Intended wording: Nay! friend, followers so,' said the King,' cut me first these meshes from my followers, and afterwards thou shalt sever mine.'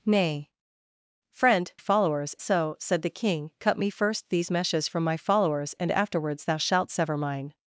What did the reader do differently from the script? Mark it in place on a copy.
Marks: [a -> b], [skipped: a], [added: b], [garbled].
Nay! friend, followers so,' said the King,' cut me first these meshes from my followers, and afterwards thou shalt sever mine.'